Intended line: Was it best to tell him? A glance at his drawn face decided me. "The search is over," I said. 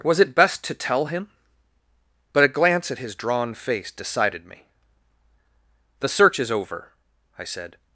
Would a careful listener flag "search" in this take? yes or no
no